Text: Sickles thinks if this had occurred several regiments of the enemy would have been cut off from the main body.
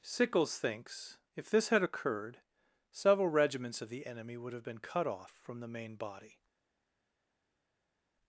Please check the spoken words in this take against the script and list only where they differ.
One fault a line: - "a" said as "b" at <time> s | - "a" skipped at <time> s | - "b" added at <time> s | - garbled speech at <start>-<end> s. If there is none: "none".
none